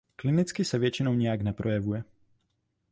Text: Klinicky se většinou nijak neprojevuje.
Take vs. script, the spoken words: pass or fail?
pass